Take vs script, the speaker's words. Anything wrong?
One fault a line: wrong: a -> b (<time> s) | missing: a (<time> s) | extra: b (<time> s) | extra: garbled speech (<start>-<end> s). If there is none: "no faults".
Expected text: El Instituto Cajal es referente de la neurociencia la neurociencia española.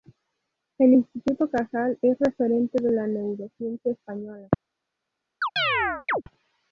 missing: la neurociencia (3.9 s)